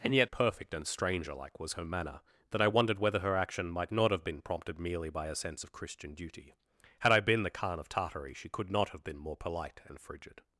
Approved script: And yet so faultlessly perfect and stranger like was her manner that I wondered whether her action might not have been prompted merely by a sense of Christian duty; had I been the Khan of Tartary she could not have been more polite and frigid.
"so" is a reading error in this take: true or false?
true